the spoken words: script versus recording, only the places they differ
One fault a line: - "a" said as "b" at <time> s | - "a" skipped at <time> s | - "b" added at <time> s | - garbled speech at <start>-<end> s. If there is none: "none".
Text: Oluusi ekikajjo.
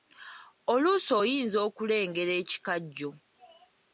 - "oyinza okulengera" added at 1.2 s